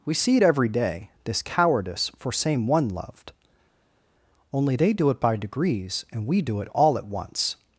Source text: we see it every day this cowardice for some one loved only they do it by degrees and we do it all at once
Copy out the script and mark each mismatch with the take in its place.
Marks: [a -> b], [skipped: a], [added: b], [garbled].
we see it every day this cowardice for [some -> same] one loved only they do it by degrees and we do it all at once